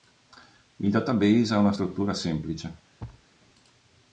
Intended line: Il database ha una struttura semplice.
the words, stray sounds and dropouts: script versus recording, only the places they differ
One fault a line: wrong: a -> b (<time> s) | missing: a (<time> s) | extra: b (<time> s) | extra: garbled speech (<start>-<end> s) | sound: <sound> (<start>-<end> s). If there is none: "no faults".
sound: thud (3.0-3.3 s)